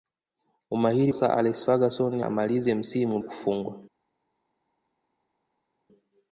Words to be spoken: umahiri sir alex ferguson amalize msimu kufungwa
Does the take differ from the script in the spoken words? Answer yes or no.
no